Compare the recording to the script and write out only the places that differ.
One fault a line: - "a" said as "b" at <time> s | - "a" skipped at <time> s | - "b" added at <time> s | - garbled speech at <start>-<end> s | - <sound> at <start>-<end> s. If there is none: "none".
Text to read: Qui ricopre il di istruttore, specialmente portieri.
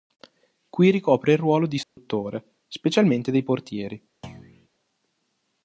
- "ruolo" added at 1.4 s
- dropout at 1.8-2.0 s
- "dei" added at 3.3 s
- thud at 4.2-4.7 s